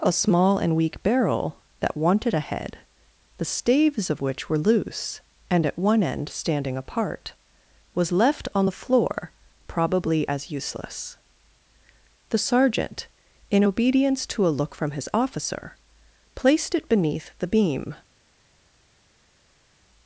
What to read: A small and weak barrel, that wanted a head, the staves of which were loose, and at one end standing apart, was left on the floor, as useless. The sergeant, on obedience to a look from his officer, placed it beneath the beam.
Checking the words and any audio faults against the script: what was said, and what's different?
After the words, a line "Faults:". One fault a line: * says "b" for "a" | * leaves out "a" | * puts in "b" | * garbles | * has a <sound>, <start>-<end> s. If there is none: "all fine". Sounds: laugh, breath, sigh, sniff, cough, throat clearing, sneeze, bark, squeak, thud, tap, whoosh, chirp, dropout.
A small and weak barrel, that wanted a head, the staves of which were loose, and at one end standing apart, was left on the floor, probably as useless. The sergeant, in obedience to a look from his officer, placed it beneath the beam.
Faults:
* puts in "probably"
* says "in" for "on"